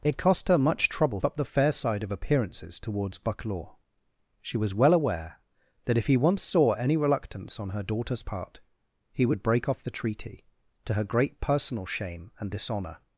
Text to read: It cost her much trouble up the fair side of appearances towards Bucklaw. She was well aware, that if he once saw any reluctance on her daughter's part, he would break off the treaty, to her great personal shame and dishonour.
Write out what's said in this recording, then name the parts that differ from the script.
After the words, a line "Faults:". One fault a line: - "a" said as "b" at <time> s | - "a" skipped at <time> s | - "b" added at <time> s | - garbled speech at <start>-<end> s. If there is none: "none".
It cost her much trouble up the fair side of appearances towards Bucklaw. She was well aware, that if he once saw any reluctance on her daughter's part, he would break off the treaty, to her great personal shame and dishonour.
Faults:
none